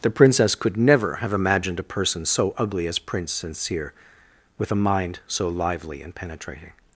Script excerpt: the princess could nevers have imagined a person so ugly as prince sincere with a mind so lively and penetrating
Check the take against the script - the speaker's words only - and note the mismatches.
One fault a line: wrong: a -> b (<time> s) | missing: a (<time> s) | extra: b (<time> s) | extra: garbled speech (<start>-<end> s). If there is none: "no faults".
wrong: nevers -> never (0.8 s)